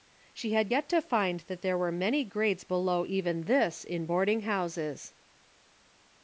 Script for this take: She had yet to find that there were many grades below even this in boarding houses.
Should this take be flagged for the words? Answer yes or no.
no